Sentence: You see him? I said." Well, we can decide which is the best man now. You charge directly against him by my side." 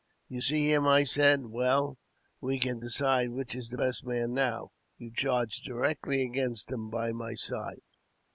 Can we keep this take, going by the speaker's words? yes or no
yes